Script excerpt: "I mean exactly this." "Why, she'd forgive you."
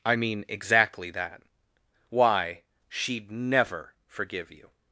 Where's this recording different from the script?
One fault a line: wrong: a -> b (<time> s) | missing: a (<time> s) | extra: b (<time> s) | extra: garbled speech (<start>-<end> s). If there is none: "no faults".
wrong: this -> that (1.1 s)
extra: never (3.3 s)